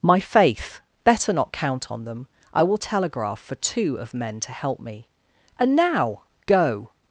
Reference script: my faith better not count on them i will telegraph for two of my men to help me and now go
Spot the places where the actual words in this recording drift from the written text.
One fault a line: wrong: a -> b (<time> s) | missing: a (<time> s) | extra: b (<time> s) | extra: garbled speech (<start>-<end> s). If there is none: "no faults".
missing: my (4.1 s)